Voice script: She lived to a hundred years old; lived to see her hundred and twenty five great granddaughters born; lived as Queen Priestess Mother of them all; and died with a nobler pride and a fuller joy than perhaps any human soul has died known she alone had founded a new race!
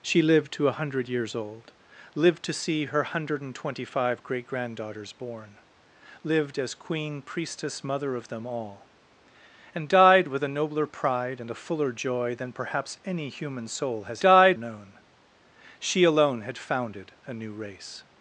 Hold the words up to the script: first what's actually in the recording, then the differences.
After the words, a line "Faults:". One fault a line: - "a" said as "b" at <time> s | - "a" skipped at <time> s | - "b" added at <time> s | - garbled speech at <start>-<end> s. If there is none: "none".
She lived to a hundred years old; lived to see her hundred and twenty five great granddaughters born; lived as Queen Priestess Mother of them all; and died with a nobler pride and a fuller joy than perhaps any human soul has died known she alone had founded a new race!
Faults:
none